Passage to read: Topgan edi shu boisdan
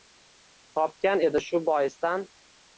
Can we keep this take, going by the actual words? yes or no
yes